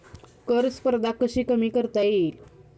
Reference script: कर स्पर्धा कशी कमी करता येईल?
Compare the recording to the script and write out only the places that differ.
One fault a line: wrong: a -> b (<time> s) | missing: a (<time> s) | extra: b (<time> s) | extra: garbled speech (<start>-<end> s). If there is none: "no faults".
no faults